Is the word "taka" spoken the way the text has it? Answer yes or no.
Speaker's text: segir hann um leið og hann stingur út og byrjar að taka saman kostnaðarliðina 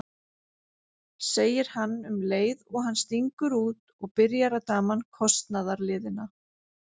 no